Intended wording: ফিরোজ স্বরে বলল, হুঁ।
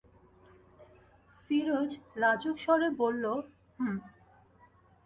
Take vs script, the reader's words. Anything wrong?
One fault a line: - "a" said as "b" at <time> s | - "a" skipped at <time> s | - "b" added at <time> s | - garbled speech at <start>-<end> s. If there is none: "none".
- "লাজুক" added at 2.1 s